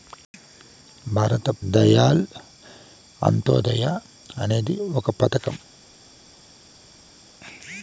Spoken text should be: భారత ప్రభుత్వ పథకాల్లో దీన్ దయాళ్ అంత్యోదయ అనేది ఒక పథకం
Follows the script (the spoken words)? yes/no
no